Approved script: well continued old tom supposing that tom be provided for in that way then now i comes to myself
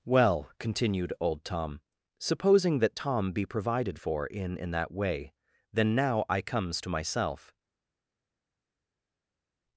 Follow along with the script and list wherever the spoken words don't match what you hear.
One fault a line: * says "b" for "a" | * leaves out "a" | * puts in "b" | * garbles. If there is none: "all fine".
* puts in "in"